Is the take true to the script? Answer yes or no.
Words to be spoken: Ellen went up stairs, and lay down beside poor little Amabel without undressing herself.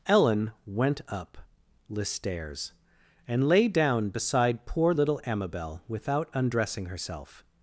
no